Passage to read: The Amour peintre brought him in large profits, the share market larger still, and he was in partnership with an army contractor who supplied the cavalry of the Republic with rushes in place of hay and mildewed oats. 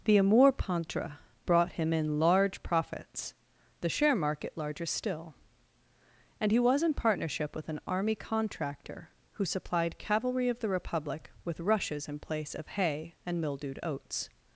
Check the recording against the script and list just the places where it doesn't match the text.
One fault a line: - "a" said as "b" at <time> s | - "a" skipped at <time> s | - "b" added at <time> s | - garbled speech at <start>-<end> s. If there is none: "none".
- "the" skipped at 10.0 s